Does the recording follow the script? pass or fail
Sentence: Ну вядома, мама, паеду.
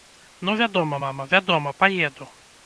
fail